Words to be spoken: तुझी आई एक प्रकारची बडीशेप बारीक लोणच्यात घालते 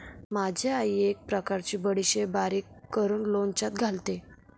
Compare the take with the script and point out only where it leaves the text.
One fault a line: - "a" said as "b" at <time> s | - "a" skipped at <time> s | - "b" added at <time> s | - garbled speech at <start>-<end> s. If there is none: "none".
- "तुझी" said as "माझी" at 0.3 s
- "करून" added at 2.9 s